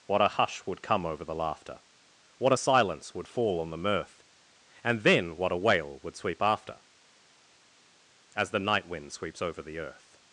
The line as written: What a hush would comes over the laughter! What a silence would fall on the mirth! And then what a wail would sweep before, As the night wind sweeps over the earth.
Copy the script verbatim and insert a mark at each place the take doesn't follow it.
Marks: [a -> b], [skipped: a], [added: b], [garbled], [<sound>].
What a hush would [comes -> come] over the laughter! What a silence would fall on the mirth! And then what a wail would sweep [before, -> after] As the night wind sweeps over the earth.